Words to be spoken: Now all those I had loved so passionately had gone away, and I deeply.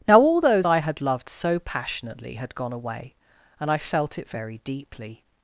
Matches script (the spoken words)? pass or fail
fail